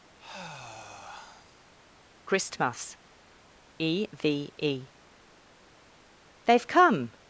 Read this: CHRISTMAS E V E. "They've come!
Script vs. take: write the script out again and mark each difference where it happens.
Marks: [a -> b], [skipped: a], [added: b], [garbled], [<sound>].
[sigh] CHRISTMAS E V E. "They've come!